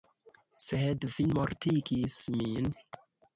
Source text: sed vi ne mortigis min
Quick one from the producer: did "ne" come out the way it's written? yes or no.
no